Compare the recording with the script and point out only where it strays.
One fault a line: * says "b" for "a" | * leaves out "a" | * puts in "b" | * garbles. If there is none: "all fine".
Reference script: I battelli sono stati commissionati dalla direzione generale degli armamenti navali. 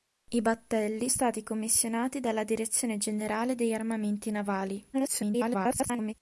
* leaves out "sono"
* garbles